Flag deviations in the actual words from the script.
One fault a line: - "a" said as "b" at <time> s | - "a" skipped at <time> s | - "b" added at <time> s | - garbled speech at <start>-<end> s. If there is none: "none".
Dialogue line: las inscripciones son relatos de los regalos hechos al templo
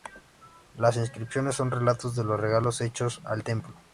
none